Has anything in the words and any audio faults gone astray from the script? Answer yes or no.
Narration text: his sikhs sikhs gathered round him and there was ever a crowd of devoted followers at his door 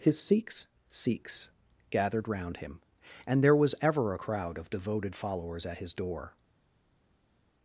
no